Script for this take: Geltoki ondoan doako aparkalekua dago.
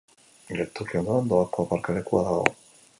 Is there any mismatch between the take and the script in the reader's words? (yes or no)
no